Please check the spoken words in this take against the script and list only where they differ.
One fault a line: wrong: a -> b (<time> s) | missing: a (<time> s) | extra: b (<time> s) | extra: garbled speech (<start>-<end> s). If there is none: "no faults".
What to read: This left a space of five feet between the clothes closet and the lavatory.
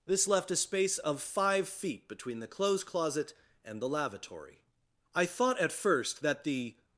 extra: I thought at first that the (5.1 s)